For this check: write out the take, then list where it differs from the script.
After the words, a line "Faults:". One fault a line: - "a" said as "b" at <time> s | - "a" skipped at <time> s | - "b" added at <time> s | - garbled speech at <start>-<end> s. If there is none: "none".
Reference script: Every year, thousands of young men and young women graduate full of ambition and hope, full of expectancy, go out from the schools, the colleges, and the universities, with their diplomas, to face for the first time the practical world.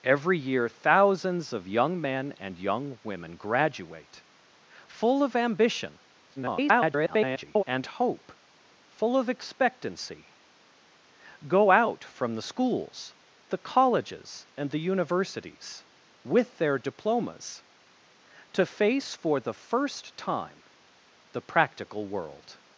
Every year, thousands of young men and young women graduate full of ambition [garbled] and hope, full of expectancy, go out from the schools, the colleges, and the universities, with their diplomas, to face for the first time the practical world.
Faults:
- garbled speech at 6.4-7.6 s